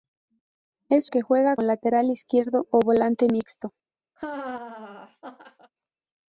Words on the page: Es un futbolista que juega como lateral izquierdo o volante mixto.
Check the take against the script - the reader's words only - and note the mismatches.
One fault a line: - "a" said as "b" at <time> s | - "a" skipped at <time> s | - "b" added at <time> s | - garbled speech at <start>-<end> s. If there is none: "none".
- "un futbolista" skipped at 1.1 s
- "como" skipped at 1.6 s